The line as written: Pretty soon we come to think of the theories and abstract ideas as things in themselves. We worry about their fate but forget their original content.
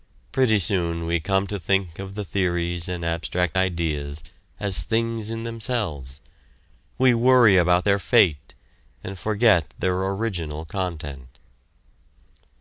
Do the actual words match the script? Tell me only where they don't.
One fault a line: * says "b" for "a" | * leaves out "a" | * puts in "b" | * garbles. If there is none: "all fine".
* says "and" for "but"